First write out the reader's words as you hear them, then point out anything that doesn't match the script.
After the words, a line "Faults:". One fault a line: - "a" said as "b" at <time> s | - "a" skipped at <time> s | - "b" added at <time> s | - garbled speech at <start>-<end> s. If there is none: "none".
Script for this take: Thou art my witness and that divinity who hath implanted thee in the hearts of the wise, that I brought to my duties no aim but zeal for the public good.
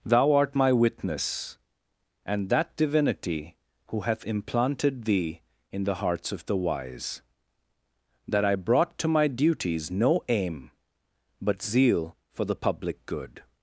Thou art my witness and that divinity who hath implanted thee in the hearts of the wise, that I brought to my duties no aim but zeal for the public good.
Faults:
none